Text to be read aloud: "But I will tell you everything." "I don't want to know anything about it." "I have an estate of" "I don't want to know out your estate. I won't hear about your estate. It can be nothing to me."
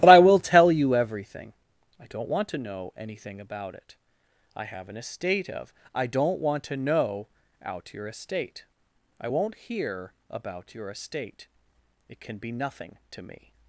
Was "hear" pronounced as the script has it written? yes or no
yes